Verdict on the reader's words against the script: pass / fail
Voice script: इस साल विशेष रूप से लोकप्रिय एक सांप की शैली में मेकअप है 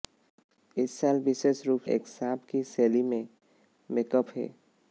fail